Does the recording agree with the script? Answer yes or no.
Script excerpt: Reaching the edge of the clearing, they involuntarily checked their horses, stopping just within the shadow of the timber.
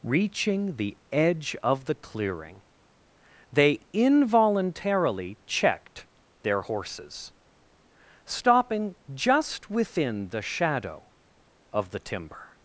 yes